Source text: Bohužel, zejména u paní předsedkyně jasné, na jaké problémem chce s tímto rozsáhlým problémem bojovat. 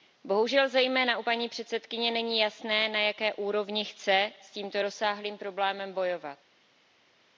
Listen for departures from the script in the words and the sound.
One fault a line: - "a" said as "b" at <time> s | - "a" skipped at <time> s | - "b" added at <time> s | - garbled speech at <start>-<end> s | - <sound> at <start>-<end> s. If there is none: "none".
- "není" added at 2.1 s
- "problémem" said as "úrovni" at 3.3 s